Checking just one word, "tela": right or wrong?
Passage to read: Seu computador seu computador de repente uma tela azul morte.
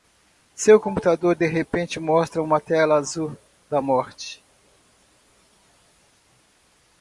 right